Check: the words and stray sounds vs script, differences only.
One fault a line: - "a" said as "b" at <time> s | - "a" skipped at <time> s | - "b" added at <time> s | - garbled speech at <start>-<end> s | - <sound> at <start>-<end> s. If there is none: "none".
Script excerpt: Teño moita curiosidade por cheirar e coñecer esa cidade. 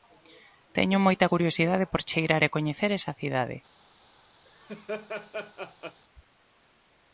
- laugh at 4.4-6.0 s